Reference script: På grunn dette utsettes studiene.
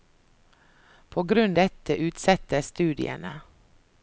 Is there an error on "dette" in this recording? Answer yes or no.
no